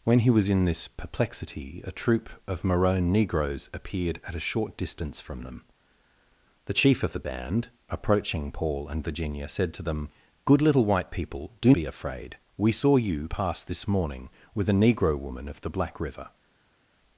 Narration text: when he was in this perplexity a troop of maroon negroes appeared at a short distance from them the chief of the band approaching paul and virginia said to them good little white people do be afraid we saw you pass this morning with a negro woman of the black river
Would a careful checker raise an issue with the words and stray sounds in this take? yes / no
no